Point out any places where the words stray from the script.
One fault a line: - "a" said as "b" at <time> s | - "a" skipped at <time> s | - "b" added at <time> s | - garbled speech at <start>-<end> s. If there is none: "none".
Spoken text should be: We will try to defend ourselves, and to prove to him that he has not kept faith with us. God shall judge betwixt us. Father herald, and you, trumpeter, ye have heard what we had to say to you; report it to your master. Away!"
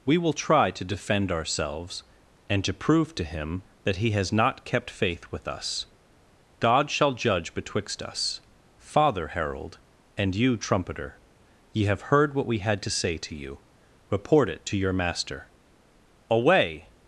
none